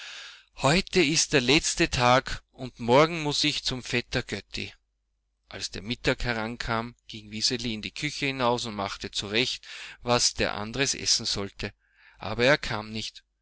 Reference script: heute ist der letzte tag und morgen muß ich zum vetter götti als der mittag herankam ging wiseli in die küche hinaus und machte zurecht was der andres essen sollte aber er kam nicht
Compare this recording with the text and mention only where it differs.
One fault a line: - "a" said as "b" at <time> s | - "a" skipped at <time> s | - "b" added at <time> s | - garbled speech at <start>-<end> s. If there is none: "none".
none